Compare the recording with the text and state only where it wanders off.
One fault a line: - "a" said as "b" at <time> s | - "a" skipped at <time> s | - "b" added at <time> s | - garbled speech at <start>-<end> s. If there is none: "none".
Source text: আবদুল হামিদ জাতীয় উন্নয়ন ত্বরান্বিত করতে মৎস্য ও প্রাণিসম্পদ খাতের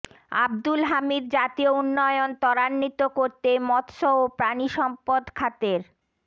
none